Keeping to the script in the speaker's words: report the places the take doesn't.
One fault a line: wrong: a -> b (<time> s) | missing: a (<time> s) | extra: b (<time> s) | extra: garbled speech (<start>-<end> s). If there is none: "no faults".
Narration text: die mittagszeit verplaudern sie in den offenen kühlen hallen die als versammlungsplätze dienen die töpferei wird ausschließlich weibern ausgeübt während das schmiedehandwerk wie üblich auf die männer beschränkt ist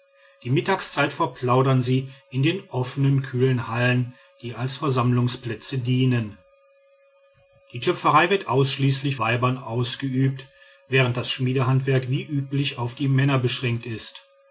no faults